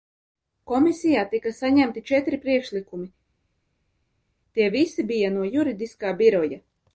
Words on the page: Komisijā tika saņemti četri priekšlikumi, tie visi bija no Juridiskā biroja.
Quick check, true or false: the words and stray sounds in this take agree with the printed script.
true